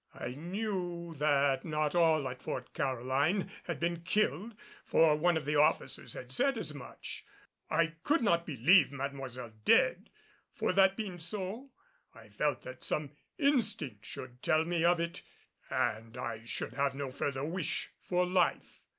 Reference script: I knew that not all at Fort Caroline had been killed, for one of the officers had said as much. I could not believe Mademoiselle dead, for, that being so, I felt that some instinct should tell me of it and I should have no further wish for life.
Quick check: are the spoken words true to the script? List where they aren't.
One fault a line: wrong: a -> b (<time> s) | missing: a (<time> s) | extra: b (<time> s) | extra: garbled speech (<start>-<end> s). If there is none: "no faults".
no faults